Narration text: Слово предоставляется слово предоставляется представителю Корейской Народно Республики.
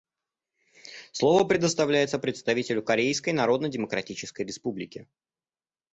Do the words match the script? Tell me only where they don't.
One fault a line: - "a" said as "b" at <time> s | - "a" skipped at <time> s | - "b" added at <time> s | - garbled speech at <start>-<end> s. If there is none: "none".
- "слово предоставляется" skipped at 2.2 s
- "Демократической" added at 3.7 s